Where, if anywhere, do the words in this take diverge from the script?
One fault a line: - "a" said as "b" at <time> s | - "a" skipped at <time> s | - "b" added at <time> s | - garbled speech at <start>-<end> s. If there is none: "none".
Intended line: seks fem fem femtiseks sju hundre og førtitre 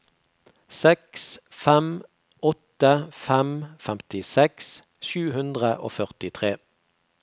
- "åtte" added at 2.5 s